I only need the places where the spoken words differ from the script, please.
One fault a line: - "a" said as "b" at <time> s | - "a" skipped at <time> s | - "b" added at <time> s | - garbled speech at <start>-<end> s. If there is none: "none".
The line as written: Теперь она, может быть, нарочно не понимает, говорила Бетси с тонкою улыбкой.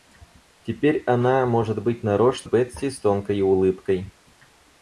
- "не понимает говорила" skipped at 2.5 s